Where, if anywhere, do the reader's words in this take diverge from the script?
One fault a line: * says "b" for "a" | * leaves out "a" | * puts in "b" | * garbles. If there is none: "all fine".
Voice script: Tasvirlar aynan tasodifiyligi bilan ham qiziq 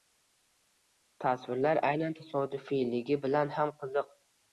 all fine